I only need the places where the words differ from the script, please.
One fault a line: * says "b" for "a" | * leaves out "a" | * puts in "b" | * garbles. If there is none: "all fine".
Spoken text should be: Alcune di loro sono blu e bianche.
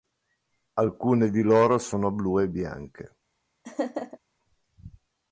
all fine